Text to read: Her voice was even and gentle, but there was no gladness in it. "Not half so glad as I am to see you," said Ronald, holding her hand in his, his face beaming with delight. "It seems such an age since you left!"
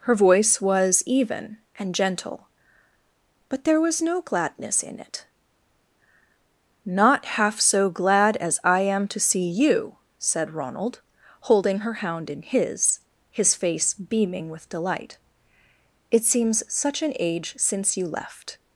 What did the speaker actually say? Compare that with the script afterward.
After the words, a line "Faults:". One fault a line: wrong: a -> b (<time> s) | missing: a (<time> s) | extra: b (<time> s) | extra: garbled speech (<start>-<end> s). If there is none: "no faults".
Her voice was even and gentle, but there was no gladness in it. "Not half so glad as I am to see you," said Ronald, holding her hound in his, his face beaming with delight. "It seems such an age since you left!"
Faults:
wrong: hand -> hound (11.9 s)